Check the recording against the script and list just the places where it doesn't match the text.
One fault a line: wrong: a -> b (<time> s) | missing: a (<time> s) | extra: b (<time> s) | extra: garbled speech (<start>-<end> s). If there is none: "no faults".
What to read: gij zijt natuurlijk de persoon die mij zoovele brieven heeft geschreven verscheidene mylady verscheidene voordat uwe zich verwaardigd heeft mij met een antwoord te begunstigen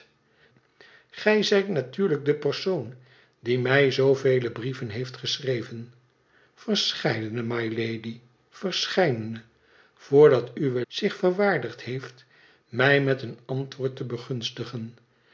no faults